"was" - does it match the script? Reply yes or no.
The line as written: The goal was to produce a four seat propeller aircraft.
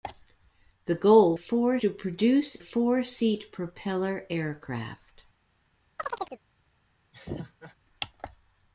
no